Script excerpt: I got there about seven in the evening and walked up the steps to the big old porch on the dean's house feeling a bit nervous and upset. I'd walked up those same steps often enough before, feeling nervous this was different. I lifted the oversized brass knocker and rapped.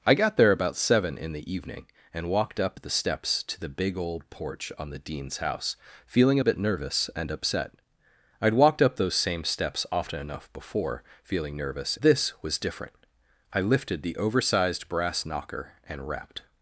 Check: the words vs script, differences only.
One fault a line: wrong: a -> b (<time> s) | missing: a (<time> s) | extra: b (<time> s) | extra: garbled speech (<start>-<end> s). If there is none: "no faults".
no faults